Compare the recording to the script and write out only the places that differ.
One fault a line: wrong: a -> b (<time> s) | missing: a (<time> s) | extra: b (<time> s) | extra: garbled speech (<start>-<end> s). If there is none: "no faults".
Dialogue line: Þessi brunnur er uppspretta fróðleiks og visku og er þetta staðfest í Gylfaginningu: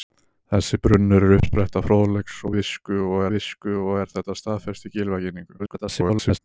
extra: visku og (3.3 s)
extra: garbled speech (5.6-6.4 s)